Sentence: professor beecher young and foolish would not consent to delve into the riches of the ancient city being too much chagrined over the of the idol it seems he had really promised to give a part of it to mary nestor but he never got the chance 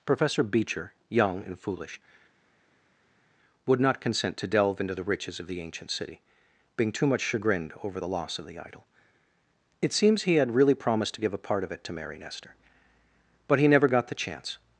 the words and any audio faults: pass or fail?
fail